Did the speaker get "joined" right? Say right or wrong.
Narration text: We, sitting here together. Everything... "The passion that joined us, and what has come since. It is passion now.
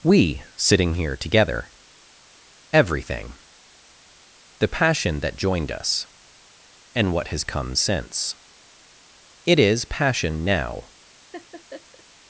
right